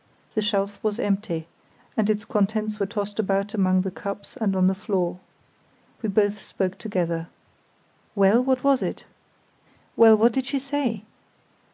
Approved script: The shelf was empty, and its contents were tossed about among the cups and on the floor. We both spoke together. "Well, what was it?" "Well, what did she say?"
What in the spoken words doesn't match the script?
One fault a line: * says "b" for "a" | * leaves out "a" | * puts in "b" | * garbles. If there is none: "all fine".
all fine